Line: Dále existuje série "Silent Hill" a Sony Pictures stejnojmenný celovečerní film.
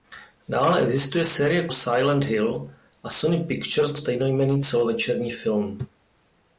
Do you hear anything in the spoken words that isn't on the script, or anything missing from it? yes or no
no